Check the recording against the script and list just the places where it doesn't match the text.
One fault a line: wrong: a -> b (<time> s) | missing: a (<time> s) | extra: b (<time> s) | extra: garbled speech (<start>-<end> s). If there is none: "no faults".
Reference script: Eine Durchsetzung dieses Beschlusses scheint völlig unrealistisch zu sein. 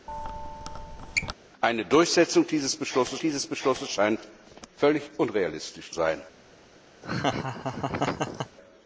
extra: dieses Beschlusses (3.2 s)
missing: zu (5.9 s)